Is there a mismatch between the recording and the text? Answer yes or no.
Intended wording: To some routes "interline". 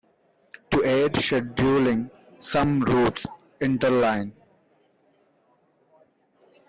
yes